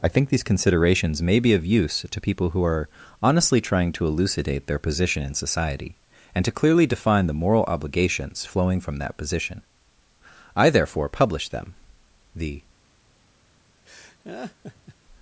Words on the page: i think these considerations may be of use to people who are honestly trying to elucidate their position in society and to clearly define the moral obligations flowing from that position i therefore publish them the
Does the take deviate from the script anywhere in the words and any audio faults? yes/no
yes